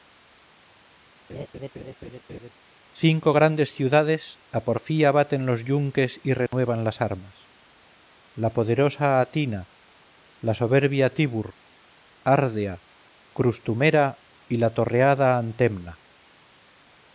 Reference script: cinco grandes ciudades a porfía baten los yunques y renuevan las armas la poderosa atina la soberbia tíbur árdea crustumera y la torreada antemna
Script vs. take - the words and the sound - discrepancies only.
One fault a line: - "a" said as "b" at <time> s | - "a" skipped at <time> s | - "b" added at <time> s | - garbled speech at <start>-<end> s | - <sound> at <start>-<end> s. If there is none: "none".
- laugh at 1.3-2.5 s
- dropout at 6.5-6.5 s